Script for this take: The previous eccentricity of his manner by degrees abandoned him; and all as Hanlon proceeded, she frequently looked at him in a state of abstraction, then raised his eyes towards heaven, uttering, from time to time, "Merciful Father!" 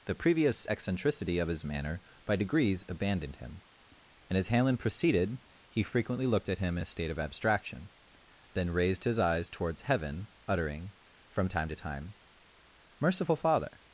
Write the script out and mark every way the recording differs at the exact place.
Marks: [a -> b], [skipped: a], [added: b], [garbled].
The previous eccentricity of his manner by degrees abandoned him; and [skipped: all] as Hanlon proceeded, [she -> he] frequently looked at him in a state of abstraction, then raised his eyes towards heaven, uttering, from time to time, "Merciful Father!"